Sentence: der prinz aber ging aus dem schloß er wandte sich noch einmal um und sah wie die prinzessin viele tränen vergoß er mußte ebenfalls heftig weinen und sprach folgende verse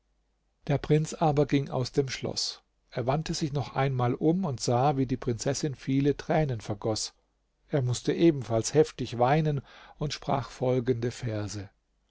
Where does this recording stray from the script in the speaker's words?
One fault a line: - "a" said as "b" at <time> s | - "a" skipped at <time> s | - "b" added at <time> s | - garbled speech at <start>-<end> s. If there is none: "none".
none